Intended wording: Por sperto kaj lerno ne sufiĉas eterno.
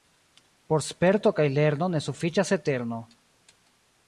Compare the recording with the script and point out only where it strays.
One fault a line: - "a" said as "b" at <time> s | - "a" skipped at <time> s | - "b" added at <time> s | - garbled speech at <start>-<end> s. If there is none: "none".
none